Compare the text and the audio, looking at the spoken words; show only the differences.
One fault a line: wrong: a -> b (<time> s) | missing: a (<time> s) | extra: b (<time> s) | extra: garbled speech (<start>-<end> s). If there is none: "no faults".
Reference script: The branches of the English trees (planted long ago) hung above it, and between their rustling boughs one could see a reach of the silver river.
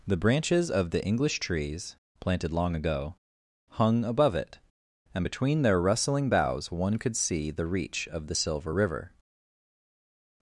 wrong: a -> the (7.5 s)